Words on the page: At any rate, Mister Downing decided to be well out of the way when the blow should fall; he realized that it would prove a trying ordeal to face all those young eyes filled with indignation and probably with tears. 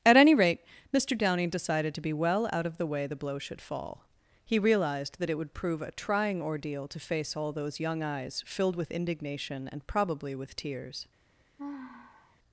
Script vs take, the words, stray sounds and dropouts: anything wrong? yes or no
yes